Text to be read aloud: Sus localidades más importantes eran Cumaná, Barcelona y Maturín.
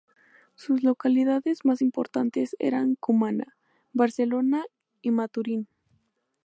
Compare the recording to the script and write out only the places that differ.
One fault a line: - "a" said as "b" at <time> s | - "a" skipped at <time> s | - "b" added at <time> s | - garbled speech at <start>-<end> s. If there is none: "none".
none